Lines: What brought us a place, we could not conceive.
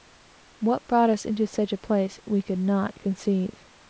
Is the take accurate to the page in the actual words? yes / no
no